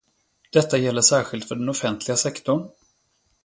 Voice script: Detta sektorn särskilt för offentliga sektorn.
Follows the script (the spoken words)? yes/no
no